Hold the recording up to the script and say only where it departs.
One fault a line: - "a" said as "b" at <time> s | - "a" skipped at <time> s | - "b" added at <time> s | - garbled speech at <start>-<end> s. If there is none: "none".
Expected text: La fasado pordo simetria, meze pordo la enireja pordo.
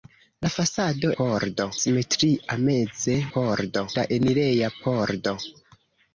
none